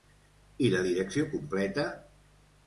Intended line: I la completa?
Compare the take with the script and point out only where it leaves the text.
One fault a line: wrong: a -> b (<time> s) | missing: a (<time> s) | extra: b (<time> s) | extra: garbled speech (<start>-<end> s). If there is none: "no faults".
extra: direcció (0.8 s)